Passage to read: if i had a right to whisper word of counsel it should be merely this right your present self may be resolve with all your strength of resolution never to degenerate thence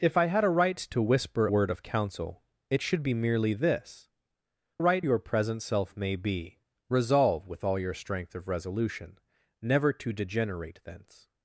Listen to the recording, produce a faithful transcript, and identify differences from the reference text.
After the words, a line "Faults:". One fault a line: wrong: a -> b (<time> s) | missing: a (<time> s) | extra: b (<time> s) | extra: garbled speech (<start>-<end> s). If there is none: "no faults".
if i had a right to whisper word of counsel it should be merely this right your present self may be resolve with all your strength of resolution never to degenerate thence
Faults:
no faults